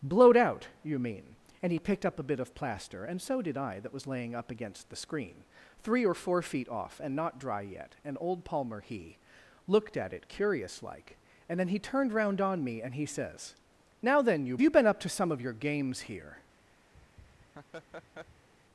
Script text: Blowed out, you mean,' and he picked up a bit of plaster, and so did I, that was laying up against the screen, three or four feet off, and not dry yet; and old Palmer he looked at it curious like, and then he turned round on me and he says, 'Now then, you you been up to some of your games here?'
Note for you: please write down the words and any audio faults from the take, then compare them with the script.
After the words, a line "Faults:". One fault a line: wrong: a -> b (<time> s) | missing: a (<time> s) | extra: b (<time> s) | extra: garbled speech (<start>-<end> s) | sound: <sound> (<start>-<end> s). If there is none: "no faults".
Blowed out, you mean,' and he picked up a bit of plaster, and so did I, that was laying up against the screen, three or four feet off, and not dry yet; and old Palmer he looked at it curious like, and then he turned round on me and he says, 'Now then, you you been up to some of your games here?'
Faults:
sound: laugh (16.9-18.5 s)